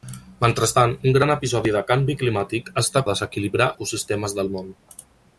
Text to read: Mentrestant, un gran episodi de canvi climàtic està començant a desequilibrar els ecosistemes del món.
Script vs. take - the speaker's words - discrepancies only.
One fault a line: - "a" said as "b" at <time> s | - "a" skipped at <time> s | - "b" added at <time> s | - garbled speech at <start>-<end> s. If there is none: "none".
- "començant" skipped at 3.0 s
- "els" skipped at 3.7 s